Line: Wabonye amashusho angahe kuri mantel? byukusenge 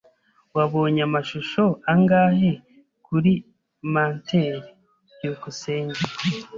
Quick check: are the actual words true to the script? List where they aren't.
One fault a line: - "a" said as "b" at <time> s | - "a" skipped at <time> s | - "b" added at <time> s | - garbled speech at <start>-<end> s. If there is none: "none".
none